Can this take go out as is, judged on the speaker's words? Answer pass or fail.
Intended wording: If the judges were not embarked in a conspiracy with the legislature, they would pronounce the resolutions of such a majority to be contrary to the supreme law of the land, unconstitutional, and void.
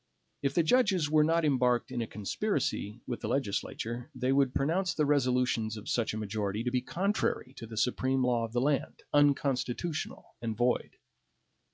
pass